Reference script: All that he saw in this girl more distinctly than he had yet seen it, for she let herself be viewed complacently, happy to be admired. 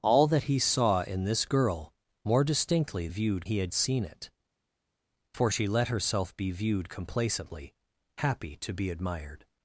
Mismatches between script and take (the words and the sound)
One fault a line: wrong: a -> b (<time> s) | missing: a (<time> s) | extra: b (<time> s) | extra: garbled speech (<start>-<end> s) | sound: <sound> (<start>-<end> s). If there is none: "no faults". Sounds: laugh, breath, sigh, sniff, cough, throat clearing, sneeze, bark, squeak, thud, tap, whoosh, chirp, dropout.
wrong: than -> viewed (3.1 s)
missing: yet (3.7 s)